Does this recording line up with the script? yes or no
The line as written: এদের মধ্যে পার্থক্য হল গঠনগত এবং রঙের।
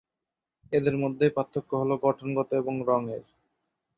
yes